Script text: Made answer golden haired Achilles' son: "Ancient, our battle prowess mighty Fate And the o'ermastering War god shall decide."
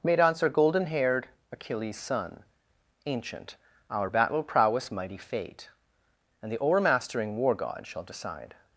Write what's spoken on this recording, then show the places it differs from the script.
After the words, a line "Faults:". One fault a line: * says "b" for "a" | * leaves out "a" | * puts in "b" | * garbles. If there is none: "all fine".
Made answer golden haired Achilles' son: "Ancient, our battle prowess mighty Fate And the o'ermastering War god shall decide."
Faults:
all fine